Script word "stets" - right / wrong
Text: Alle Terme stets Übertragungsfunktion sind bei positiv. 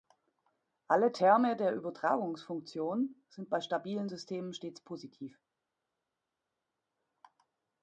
wrong